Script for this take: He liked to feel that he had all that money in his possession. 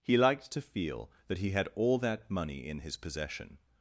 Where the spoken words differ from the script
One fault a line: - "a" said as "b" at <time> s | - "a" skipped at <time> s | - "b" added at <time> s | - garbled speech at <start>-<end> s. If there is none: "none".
none